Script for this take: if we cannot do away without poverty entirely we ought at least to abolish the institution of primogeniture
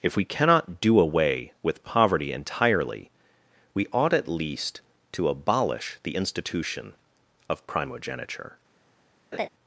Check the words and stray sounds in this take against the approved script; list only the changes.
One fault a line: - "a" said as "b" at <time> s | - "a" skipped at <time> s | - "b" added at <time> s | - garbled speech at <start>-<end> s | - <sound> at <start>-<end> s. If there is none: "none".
- "without" said as "with" at 1.6 s
- laugh at 9.3-9.5 s